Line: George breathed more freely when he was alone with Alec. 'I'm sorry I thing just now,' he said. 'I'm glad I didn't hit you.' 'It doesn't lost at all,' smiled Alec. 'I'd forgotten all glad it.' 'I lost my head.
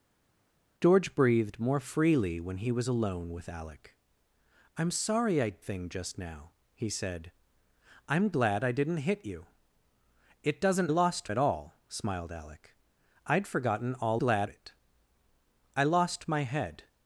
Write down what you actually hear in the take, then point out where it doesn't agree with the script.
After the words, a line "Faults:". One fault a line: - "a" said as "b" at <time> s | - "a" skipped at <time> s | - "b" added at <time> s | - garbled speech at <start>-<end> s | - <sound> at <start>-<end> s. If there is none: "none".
George breathed more freely when he was alone with Alec. 'I'm sorry I thing just now,' he said. 'I'm glad I didn't hit you.' 'It doesn't lost at all,' smiled Alec. 'I'd forgotten all glad it.' 'I lost my head.
Faults:
none